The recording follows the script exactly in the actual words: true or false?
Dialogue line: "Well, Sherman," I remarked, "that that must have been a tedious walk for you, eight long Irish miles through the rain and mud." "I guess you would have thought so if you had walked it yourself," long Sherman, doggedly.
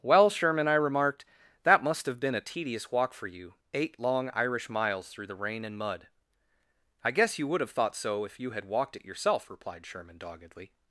false